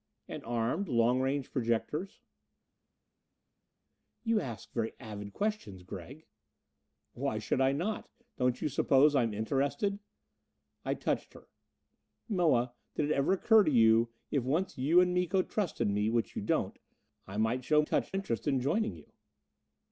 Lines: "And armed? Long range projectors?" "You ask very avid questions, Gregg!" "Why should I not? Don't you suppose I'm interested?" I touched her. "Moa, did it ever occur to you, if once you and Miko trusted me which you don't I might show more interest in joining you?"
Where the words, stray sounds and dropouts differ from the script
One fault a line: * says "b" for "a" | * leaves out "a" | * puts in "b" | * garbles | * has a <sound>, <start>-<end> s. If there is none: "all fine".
* says "touched" for "more"